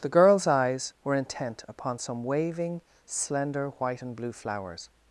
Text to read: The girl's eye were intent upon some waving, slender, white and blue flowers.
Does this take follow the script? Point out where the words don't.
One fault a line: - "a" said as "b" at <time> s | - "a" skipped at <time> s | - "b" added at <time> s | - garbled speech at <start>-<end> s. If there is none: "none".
- "eye" said as "eyes" at 0.5 s